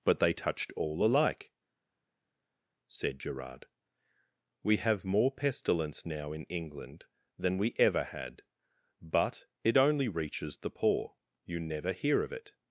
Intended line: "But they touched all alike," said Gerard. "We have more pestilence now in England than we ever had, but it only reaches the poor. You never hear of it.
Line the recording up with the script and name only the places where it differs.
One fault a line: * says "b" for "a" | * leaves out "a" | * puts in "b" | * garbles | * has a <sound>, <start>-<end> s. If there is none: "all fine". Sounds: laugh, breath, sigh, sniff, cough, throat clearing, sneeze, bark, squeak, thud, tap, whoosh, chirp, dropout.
all fine